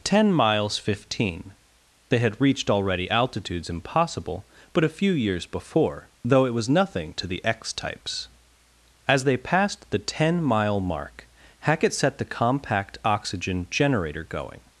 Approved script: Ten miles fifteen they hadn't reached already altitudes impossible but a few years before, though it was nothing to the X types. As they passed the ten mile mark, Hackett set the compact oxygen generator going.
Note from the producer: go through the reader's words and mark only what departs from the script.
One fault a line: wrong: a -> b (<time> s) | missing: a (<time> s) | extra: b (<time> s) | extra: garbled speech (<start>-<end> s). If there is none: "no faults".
wrong: hadn't -> had (2.2 s)